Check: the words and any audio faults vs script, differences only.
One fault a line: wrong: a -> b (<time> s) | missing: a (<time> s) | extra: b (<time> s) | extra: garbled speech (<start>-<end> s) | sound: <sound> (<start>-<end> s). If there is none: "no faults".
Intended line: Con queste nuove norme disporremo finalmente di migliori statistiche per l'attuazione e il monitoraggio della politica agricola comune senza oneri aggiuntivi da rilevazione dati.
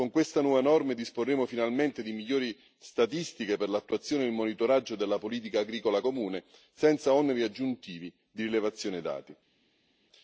wrong: da -> di (8.3 s)